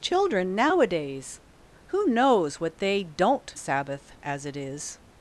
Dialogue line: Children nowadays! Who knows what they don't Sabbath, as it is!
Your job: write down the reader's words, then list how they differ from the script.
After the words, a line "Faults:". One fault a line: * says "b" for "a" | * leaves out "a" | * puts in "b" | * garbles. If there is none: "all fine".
Children nowadays! Who knows what they don't Sabbath, as it is!
Faults:
all fine